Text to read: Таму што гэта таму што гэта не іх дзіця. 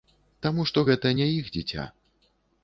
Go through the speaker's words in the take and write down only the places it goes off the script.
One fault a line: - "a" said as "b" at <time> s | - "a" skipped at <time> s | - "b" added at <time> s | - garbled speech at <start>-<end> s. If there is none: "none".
- "таму што гэта" skipped at 1.1 s